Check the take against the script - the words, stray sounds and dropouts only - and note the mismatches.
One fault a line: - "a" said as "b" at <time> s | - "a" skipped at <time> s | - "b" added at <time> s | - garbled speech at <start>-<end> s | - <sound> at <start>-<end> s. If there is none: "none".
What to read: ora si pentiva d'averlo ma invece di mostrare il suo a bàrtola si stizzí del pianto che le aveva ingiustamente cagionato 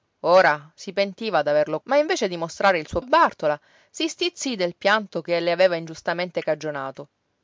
none